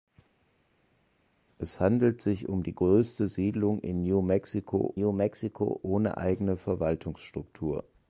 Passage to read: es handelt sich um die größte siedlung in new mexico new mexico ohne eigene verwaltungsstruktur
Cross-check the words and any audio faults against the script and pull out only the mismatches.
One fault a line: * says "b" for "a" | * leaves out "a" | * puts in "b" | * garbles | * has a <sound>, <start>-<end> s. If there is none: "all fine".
all fine